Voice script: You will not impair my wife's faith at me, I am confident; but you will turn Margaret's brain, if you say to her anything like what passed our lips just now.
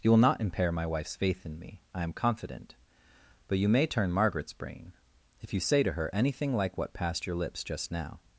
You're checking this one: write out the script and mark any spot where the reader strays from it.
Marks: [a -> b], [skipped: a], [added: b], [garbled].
You will not impair my wife's faith [at -> in] me, I am confident; but you [will -> may] turn Margaret's brain, if you say to her anything like what passed [our -> your] lips just now.